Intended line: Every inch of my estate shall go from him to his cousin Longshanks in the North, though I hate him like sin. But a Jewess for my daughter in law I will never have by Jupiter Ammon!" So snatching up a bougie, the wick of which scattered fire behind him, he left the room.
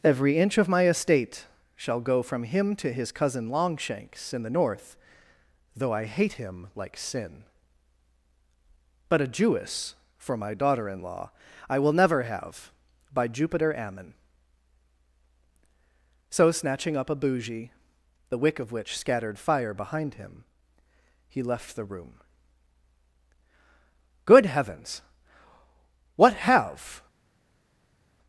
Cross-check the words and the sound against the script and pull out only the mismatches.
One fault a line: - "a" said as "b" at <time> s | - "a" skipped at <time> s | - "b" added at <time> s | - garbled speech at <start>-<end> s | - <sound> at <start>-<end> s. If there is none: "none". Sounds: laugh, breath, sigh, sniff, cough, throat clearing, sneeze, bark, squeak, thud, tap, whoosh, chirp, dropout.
- "Good Heavens what have" added at 24.3 s